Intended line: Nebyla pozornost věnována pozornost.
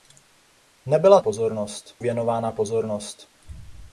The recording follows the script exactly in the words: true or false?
true